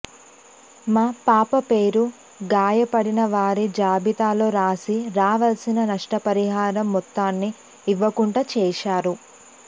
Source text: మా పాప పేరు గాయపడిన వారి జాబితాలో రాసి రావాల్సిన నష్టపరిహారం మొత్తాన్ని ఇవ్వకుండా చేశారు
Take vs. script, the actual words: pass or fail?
pass